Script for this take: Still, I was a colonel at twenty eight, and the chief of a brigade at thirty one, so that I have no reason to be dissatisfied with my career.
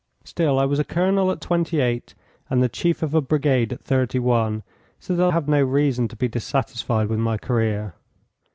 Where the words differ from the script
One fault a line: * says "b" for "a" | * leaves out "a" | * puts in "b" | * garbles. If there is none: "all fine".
* leaves out "I"